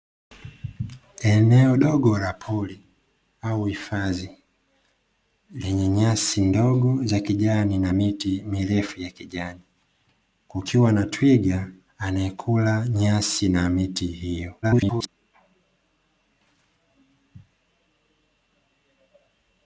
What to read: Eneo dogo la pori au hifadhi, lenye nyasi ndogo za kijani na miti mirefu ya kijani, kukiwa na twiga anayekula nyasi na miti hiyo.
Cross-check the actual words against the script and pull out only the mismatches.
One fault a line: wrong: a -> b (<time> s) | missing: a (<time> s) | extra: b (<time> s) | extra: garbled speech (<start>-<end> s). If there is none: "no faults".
extra: garbled speech (14.6-15.1 s)